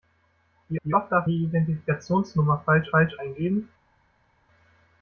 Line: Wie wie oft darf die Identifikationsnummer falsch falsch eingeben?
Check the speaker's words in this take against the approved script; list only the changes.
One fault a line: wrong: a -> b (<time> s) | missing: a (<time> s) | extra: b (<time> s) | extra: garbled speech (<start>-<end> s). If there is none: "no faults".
no faults